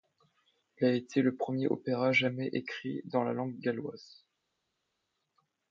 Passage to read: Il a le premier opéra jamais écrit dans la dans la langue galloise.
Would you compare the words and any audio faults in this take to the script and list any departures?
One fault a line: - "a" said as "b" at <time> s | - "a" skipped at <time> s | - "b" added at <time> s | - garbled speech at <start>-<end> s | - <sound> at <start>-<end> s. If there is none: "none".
- "été" added at 0.9 s
- "dans la" skipped at 3.3 s